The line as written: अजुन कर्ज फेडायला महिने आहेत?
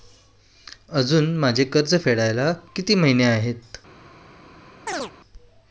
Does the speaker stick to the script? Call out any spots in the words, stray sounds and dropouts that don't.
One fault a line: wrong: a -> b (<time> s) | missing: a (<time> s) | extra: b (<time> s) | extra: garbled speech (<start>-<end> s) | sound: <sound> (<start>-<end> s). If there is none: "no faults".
extra: माझे (1.4 s)
extra: किती (2.7 s)
sound: chirp (4.9-5.1 s)